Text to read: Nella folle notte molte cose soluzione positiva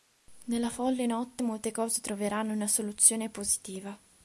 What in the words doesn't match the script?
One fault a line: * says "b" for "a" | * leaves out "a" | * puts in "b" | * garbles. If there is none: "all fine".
* puts in "troveranno una"